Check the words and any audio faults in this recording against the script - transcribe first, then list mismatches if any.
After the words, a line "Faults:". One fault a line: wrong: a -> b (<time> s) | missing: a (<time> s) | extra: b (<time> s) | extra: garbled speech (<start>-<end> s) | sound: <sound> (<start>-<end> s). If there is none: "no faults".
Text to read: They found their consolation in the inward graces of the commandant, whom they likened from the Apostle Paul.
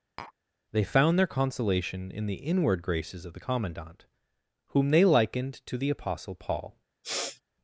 They found their consolation in the inward graces of the commandant, whom they likened to the Apostle Paul.
Faults:
sound: tap (0.2-0.3 s)
wrong: from -> to (5.7 s)
sound: sniff (7.0-7.4 s)